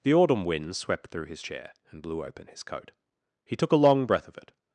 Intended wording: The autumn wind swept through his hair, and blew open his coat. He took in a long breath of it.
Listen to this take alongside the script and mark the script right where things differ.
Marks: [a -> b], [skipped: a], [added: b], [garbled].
The autumn wind swept through his [hair, -> chair] and blew open his coat. He took [skipped: in] a long breath of it.